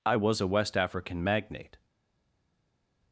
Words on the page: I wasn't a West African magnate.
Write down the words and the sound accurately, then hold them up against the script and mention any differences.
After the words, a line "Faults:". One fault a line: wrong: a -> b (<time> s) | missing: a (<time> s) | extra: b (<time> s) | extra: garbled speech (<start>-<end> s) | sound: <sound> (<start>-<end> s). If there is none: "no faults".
I was a West African magnate.
Faults:
wrong: wasn't -> was (0.1 s)